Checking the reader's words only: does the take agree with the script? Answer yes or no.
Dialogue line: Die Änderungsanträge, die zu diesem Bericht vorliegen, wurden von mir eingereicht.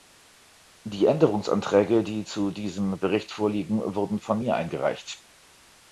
yes